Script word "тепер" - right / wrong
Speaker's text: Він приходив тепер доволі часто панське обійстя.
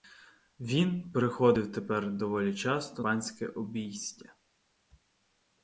right